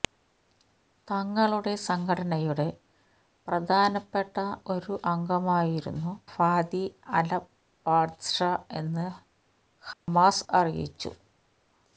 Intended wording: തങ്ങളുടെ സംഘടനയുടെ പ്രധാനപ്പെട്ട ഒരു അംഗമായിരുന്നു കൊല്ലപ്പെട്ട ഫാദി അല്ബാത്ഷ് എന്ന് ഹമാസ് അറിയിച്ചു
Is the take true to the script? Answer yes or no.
no